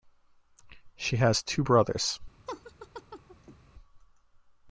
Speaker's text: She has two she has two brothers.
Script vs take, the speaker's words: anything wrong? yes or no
yes